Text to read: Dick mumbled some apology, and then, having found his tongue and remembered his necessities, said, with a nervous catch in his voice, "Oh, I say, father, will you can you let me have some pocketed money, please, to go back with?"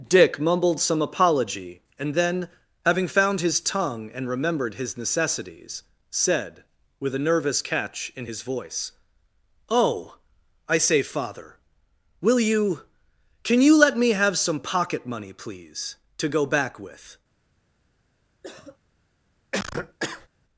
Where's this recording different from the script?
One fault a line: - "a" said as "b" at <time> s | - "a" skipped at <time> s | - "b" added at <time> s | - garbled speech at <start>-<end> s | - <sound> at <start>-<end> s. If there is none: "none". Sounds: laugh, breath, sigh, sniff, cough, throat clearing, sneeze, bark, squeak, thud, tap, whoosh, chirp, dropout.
- "pocketed" said as "pocket" at 14.6 s
- cough at 18.4-18.8 s
- cough at 19.5-20.3 s